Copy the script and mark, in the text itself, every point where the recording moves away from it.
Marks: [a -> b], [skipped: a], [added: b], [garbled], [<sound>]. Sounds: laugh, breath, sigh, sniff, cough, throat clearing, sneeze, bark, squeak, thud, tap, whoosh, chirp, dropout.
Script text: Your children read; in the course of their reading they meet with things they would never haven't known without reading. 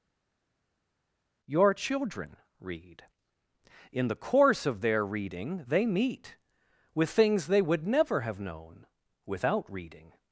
Your children read; in the course of their reading they meet with things they would never [haven't -> have] known without reading.